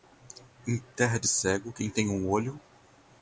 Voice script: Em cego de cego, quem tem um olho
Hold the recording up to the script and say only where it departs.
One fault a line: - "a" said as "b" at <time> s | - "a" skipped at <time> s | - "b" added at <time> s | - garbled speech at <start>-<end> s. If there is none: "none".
- "cego" said as "terra" at 0.9 s